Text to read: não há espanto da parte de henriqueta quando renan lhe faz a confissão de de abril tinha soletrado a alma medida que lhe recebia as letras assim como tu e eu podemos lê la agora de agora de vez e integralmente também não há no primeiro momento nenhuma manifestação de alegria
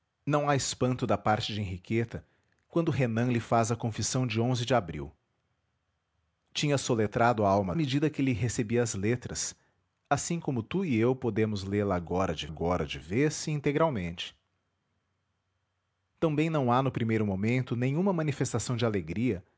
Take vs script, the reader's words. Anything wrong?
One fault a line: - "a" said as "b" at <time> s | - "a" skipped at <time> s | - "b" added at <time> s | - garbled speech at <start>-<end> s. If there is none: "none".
none